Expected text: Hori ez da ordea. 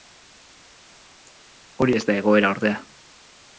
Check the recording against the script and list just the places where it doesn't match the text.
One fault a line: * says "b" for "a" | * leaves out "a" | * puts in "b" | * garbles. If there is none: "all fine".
* puts in "egoera"